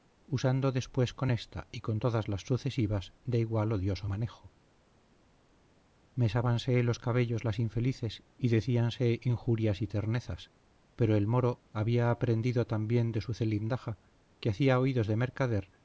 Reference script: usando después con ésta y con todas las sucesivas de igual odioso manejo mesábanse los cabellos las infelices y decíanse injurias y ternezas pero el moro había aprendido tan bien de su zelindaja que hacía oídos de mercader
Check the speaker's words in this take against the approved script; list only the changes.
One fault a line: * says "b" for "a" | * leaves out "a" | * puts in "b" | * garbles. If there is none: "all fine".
all fine